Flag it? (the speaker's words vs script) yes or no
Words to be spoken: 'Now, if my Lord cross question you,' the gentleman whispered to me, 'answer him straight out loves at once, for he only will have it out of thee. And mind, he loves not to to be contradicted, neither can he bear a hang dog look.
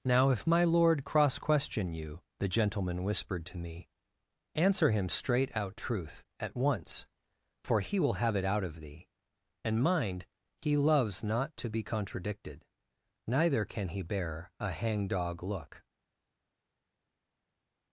yes